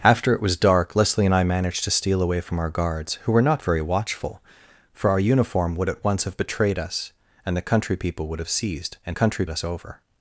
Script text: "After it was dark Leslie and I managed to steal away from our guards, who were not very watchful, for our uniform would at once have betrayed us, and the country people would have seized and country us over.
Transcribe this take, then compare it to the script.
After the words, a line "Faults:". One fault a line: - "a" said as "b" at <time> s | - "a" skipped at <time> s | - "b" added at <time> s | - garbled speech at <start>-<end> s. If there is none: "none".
"After it was dark Leslie and I managed to steal away from our guards, who were not very watchful, for our uniform would at once have betrayed us, and the country people would have seized and country us over.
Faults:
none